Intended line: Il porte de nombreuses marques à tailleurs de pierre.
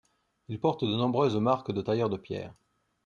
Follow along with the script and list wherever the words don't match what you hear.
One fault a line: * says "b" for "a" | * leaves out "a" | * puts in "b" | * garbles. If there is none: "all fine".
* says "de" for "à"